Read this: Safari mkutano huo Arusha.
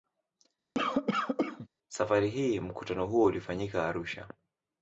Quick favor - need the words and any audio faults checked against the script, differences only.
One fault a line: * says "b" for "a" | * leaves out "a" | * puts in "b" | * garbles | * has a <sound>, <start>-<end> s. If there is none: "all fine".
* has a cough, 0.7-1.7 s
* puts in "hii"
* puts in "ulifanyika"